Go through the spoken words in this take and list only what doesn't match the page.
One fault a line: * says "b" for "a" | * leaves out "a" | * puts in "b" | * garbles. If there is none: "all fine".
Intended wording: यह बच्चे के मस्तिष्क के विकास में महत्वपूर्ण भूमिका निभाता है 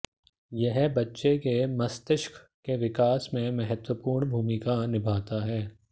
all fine